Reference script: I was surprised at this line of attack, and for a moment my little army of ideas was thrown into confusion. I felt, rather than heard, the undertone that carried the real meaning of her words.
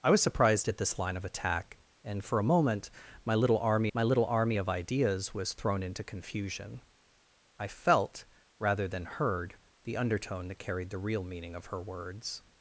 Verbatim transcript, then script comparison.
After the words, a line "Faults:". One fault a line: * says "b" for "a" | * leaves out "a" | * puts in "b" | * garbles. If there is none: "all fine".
I was surprised at this line of attack, and for a moment my little army my little army of ideas was thrown into confusion. I felt, rather than heard, the undertone that carried the real meaning of her words.
Faults:
* puts in "my little army"